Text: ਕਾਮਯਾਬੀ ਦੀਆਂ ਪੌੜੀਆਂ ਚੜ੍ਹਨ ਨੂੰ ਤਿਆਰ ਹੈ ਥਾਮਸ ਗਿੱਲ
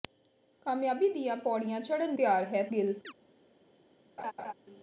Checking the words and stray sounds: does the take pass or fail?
fail